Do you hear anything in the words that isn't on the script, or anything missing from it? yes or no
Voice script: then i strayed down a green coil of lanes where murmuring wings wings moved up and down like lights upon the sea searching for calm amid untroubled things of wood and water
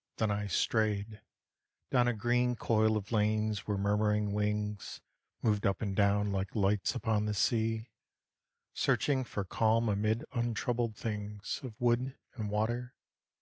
yes